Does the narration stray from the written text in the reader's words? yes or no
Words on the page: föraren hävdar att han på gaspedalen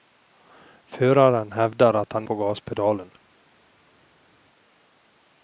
no